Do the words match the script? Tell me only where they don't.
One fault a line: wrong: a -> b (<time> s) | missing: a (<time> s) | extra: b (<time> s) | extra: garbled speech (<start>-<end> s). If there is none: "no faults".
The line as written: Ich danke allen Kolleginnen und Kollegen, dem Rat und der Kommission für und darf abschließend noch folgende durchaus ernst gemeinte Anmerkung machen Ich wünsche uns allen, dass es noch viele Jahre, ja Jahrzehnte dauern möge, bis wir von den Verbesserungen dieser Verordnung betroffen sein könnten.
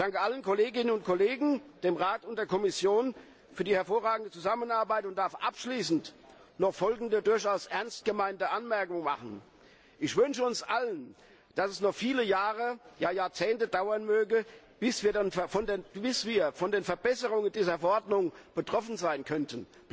extra: die hervorragende Zusammenarbeit (3.6 s)